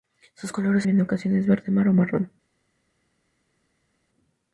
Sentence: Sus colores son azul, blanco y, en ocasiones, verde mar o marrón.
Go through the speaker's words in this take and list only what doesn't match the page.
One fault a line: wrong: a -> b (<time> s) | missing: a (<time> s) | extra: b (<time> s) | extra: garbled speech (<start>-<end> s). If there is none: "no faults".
missing: son azul blanco (0.9 s)